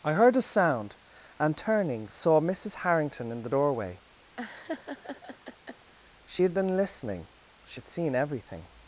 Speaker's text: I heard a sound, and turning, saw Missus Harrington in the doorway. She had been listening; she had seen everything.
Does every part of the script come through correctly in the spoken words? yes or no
yes